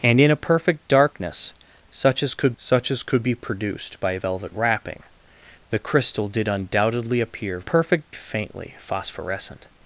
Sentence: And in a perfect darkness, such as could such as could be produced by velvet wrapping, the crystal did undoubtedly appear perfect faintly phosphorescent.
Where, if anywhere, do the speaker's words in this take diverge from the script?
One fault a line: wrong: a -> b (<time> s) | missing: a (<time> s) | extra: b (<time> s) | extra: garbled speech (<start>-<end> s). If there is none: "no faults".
no faults